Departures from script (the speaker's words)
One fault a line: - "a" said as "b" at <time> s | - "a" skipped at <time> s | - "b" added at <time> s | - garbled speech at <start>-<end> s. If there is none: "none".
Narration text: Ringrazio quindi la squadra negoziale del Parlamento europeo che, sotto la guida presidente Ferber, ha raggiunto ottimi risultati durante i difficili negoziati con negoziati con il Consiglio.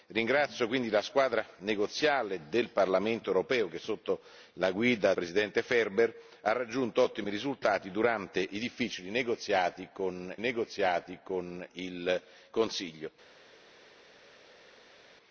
none